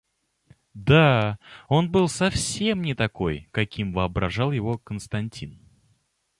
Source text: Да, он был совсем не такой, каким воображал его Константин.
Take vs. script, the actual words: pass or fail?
pass